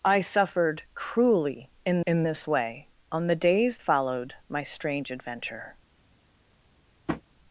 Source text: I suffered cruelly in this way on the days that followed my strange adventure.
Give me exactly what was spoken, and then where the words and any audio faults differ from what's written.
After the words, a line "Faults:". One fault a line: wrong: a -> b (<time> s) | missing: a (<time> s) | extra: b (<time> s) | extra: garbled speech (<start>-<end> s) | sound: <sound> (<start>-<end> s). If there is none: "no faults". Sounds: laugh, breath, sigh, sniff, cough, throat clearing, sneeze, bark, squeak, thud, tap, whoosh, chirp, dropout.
I suffered cruelly in in this way on the days followed my strange adventure.
Faults:
extra: in (2.1 s)
missing: that (3.8 s)
sound: tap (7.1-7.2 s)